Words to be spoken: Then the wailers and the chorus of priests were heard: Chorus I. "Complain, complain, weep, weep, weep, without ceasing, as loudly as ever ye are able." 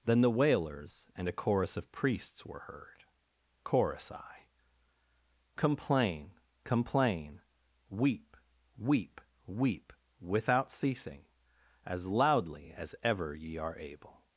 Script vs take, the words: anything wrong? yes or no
yes